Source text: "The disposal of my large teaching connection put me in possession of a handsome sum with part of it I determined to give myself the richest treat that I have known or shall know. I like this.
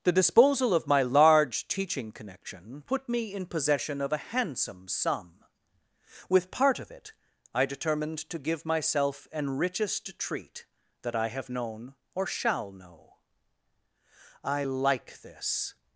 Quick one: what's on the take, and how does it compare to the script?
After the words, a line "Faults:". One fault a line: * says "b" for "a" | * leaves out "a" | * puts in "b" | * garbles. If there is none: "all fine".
"The disposal of my large teaching connection put me in possession of a handsome sum with part of it I determined to give myself an richest treat that I have known or shall know. I like this.
Faults:
* says "an" for "the"